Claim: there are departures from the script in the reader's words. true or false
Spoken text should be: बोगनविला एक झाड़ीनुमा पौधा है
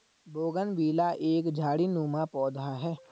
false